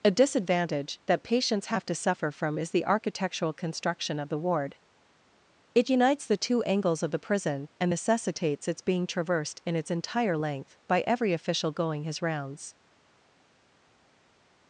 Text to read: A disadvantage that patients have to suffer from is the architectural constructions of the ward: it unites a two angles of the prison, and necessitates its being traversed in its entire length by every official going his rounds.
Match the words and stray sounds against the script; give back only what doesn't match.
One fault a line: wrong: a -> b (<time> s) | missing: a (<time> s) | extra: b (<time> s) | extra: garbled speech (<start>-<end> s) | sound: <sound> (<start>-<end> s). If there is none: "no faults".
wrong: constructions -> construction (3.5 s)
wrong: a -> the (6.2 s)